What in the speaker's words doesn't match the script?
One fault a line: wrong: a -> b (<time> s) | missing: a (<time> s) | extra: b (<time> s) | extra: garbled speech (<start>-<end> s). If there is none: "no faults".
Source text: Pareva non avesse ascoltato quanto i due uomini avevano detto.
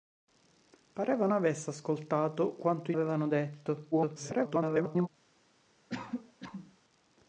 missing: non (1.3 s)
missing: due uomini (3.0 s)
extra: garbled speech (3.9-5.1 s)